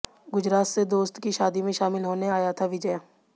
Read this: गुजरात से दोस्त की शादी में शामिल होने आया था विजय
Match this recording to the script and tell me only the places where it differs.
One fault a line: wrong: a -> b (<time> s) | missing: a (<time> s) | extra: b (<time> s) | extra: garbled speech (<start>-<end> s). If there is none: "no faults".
no faults